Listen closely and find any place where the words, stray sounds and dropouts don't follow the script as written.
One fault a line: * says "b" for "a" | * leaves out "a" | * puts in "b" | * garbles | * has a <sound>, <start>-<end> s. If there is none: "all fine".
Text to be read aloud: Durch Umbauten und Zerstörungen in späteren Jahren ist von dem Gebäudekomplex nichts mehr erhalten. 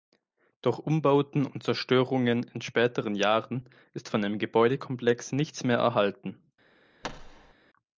* has a thud, 7.0-7.5 s